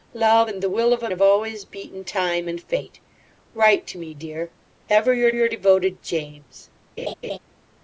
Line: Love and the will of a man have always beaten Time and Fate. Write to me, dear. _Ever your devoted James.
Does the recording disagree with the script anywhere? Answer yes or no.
yes